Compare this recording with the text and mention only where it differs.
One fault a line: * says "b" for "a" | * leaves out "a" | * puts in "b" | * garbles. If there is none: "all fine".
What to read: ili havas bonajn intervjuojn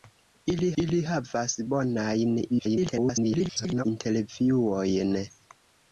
* puts in "ili"
* garbles